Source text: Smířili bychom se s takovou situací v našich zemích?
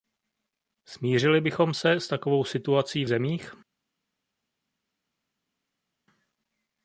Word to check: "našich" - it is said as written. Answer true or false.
false